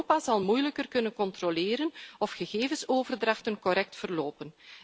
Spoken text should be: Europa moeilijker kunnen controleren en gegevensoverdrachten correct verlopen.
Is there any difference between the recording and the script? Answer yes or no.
yes